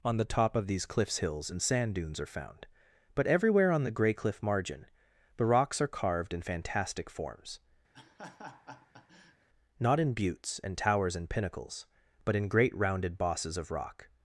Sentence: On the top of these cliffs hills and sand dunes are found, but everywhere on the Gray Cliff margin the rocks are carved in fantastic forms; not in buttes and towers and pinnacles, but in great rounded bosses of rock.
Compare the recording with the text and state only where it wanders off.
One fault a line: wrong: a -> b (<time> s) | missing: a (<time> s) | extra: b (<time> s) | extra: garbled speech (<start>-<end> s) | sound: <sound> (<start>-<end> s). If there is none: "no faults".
sound: laugh (7.9-9.5 s)